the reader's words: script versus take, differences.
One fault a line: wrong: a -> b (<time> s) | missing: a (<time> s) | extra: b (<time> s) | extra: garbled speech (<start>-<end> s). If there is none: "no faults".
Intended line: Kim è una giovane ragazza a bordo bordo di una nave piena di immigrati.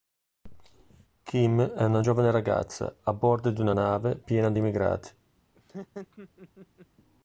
missing: bordo (3.5 s)